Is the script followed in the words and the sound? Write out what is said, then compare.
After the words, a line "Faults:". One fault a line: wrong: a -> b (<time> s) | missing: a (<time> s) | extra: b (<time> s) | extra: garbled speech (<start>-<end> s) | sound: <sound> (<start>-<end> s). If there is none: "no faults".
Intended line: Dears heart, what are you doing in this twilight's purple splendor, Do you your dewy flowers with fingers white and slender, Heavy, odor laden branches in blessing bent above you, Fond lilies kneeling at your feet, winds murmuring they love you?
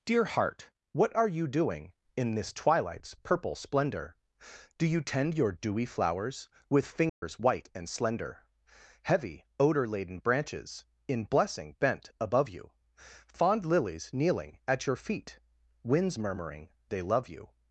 Dear heart, what are you doing in this twilight's purple splendor, Do you tend your dewy flowers with fingers white and slender, Heavy, odor laden branches in blessing bent above you, Fond lilies kneeling at your feet, winds murmuring they love you?
Faults:
wrong: Dears -> Dear (0.0 s)
extra: tend (5.0 s)
sound: dropout (7.1-7.2 s)